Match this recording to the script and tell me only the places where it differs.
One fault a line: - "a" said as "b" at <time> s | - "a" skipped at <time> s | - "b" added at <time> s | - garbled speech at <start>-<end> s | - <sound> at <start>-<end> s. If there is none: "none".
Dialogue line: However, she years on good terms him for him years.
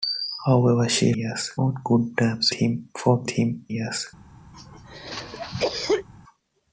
- cough at 4.5-6.1 s